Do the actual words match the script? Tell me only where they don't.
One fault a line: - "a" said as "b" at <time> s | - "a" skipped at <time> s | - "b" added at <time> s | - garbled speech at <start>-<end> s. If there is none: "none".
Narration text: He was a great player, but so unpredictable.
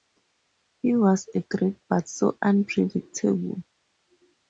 - "player" skipped at 1.8 s